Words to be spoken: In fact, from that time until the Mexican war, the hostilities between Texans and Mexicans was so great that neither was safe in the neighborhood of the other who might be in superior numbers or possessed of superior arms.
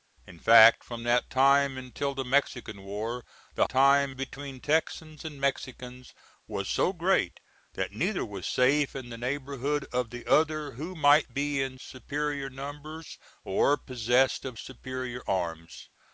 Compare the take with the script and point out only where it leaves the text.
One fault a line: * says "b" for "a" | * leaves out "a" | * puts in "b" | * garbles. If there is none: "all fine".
* says "time" for "hostilities"